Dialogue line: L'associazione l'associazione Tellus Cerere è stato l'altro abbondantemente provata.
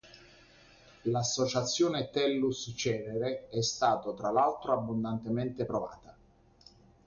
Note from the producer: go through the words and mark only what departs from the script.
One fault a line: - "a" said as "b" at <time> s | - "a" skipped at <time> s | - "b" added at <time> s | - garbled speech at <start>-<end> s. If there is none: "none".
- "l'associazione" skipped at 2.1 s
- "tra" added at 4.2 s